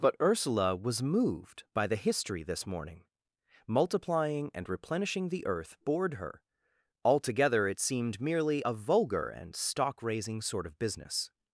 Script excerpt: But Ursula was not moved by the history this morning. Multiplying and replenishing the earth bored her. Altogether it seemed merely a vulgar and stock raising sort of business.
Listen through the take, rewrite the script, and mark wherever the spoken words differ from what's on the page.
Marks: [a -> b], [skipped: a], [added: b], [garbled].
But Ursula was [skipped: not] moved by the history this morning. Multiplying and replenishing the earth bored her. Altogether it seemed merely a vulgar and stock raising sort of business.